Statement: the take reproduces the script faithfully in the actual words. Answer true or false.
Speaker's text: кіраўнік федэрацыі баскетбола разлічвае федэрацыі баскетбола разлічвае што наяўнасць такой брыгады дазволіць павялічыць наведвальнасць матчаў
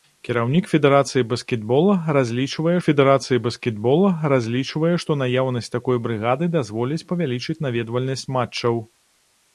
true